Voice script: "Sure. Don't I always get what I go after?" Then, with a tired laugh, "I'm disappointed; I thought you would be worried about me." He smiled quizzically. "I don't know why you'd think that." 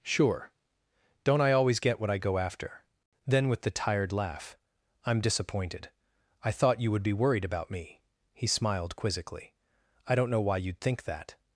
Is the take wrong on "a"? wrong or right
wrong